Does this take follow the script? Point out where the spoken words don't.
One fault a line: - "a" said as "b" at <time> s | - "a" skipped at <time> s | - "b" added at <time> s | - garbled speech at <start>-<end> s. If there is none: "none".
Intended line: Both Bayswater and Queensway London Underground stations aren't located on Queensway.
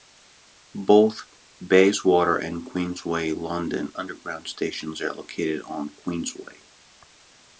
- "aren't" said as "are" at 5.0 s